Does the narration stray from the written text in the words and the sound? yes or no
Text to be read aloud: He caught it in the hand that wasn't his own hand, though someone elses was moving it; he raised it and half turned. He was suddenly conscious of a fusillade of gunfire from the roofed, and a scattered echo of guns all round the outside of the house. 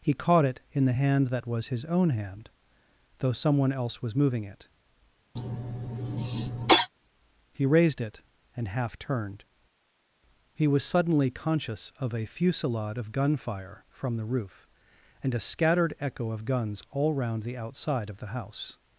yes